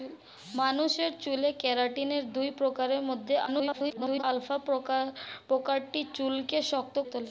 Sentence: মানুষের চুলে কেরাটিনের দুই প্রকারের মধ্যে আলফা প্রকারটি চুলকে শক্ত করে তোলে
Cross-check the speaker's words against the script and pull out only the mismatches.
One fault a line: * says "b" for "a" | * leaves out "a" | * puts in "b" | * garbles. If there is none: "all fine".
* garbles
* leaves out "করে"